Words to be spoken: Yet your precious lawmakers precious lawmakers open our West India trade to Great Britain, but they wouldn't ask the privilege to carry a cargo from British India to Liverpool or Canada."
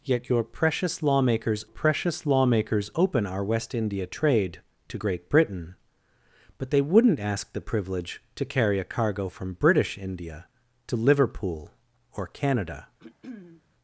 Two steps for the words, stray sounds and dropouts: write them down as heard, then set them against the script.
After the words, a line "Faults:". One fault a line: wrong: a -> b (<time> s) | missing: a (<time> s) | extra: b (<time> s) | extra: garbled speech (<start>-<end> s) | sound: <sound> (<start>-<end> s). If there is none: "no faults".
Yet your precious lawmakers precious lawmakers open our West India trade to Great Britain, but they wouldn't ask the privilege to carry a cargo from British India to Liverpool or Canada."
Faults:
sound: throat clearing (13.0-13.6 s)